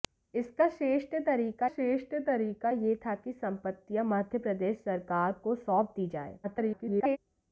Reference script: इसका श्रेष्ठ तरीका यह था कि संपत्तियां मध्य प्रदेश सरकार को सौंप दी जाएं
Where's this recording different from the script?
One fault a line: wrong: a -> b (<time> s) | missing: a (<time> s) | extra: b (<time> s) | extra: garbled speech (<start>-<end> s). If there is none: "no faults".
extra: श्रेष्ठ तरीका (1.7 s)
extra: garbled speech (6.4-7.2 s)